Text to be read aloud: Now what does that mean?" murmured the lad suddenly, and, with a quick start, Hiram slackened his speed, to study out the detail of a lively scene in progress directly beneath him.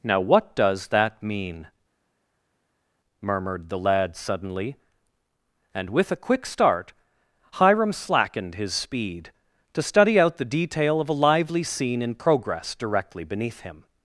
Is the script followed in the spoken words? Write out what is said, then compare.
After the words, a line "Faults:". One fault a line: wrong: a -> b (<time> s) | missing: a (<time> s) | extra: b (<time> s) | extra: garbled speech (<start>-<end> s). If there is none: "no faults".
Now what does that mean?" murmured the lad suddenly, and, with a quick start, Hiram slackened his speed, to study out the detail of a lively scene in progress directly beneath him.
Faults:
no faults